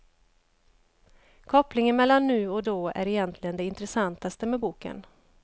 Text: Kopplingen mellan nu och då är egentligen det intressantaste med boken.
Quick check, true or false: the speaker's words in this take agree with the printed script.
true